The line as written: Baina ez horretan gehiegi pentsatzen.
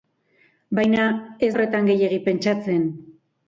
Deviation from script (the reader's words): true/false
false